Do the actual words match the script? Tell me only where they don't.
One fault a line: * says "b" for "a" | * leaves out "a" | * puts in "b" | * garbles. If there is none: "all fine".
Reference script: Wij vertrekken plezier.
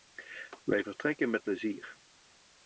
* puts in "met"